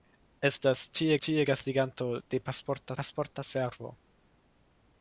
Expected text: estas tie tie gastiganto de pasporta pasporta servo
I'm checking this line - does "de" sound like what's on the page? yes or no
yes